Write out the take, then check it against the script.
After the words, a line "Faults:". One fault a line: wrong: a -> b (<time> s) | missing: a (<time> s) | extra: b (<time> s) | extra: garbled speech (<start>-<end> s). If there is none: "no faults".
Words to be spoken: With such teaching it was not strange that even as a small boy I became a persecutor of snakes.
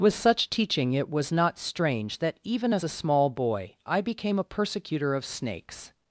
With such teaching it was not strange that even as a small boy I became a persecutor of snakes.
Faults:
no faults